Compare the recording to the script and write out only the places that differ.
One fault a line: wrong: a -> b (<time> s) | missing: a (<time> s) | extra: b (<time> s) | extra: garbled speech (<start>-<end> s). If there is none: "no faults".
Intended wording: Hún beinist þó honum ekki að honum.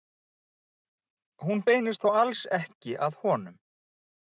wrong: honum -> alls (2.3 s)